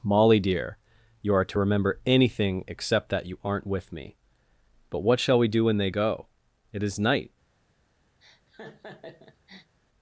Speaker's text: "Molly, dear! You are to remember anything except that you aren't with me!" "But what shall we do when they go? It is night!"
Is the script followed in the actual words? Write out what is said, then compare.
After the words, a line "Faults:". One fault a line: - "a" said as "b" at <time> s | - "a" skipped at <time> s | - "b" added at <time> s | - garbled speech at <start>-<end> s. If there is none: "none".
"Molly, dear! You are to remember anything except that you aren't with me!" "But what shall we do when they go? It is night!"
Faults:
none